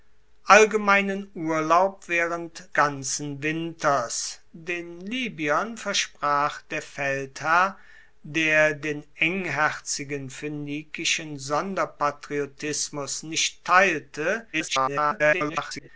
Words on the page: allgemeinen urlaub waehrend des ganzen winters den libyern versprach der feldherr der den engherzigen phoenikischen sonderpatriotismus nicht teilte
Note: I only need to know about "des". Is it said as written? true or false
false